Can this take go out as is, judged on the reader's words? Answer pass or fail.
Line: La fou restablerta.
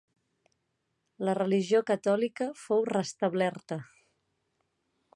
fail